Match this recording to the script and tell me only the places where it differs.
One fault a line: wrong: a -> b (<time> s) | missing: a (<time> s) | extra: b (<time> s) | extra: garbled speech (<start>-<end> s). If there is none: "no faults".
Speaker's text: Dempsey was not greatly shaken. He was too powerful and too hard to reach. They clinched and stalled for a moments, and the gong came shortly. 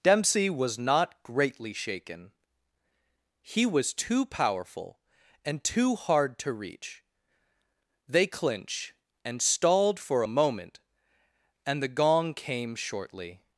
wrong: moments -> moment (10.3 s)